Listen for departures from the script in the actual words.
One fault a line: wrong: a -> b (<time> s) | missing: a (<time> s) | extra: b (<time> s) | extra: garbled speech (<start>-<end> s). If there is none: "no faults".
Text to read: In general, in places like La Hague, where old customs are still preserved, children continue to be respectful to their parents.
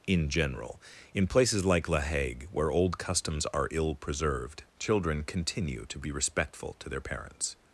wrong: still -> ill (3.7 s)